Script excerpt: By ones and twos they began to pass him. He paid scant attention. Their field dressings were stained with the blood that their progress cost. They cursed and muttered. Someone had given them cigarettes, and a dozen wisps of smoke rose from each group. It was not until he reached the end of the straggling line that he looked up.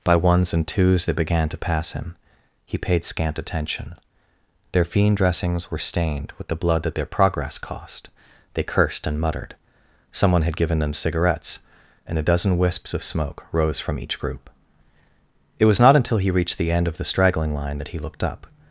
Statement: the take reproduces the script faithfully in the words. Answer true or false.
false